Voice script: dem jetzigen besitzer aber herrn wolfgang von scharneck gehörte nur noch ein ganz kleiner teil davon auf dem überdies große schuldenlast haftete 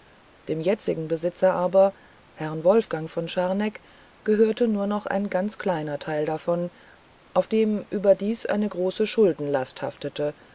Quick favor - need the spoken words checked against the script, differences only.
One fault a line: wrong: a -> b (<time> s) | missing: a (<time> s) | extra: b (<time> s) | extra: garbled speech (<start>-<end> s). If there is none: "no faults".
extra: eine (8.5 s)